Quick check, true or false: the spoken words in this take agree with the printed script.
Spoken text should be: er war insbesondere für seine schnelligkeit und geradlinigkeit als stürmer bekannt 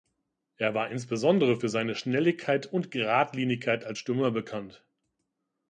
true